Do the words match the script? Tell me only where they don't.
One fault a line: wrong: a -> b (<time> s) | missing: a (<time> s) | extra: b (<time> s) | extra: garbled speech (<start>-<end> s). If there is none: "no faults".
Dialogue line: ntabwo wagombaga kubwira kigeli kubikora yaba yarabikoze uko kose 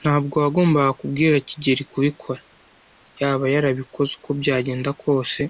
extra: byagenda (4.4 s)